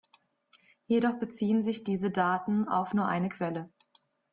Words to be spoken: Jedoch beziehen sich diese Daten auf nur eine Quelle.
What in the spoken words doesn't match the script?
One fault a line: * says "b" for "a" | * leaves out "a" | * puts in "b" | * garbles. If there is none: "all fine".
all fine